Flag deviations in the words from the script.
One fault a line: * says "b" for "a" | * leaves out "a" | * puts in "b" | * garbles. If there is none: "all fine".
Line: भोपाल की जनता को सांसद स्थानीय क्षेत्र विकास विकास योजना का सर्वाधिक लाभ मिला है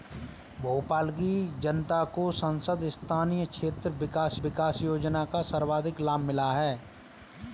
all fine